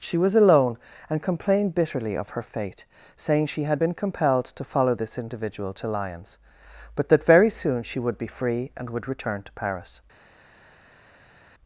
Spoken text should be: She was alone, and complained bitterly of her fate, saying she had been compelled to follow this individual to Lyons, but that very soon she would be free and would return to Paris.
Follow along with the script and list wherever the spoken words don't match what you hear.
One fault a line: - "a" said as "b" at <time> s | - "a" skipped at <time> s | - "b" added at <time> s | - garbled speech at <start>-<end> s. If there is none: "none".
none